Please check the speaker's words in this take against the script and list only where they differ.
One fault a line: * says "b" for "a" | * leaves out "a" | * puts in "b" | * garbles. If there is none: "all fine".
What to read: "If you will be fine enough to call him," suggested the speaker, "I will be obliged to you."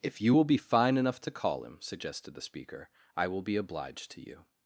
all fine